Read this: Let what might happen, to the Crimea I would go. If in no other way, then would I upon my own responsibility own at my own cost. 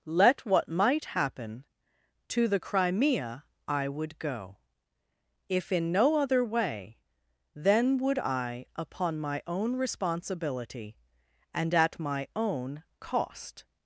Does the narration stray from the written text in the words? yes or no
yes